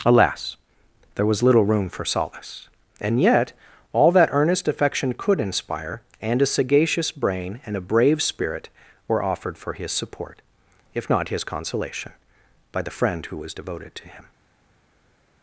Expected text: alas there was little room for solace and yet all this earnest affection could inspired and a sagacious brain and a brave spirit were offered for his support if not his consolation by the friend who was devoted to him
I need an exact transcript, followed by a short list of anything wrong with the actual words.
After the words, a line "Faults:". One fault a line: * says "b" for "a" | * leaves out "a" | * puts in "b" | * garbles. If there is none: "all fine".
alas there was little room for solace and yet all that earnest affection could inspire and a sagacious brain and a brave spirit were offered for his support if not his consolation by the friend who was devoted to him
Faults:
* says "that" for "this"
* says "inspire" for "inspired"